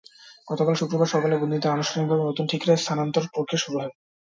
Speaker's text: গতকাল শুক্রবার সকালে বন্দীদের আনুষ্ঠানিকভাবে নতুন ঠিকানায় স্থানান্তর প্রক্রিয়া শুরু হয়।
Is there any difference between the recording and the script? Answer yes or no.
no